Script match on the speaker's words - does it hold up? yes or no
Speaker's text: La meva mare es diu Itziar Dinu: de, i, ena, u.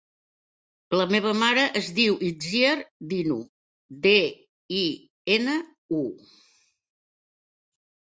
yes